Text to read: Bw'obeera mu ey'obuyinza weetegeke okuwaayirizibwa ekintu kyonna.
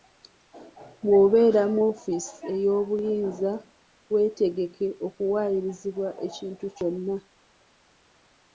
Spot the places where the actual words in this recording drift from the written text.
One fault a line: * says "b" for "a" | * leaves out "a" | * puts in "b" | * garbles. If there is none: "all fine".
* puts in "woofiisi"